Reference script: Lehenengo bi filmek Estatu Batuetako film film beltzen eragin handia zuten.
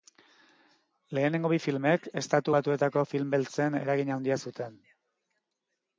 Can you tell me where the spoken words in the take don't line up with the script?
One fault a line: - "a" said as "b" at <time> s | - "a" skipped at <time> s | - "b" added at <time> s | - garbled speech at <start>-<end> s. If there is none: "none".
- "film" skipped at 3.3 s